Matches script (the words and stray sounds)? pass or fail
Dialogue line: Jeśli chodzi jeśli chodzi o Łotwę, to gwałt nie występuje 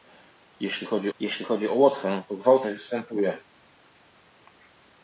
pass